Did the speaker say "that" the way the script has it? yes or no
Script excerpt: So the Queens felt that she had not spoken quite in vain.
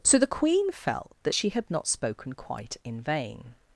yes